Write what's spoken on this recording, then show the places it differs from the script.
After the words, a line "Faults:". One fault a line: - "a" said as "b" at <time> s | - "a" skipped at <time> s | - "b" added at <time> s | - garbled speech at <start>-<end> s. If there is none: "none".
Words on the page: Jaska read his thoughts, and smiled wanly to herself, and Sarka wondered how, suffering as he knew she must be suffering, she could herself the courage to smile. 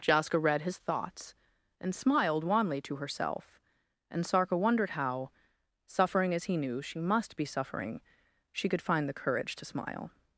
Jaska read his thoughts, and smiled wanly to herself, and Sarka wondered how, suffering as he knew she must be suffering, she could find the courage to smile.
Faults:
- "herself" said as "find" at 8.8 s